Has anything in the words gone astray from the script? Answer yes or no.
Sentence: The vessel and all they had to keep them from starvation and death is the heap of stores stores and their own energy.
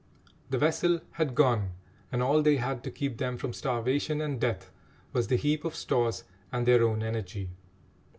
yes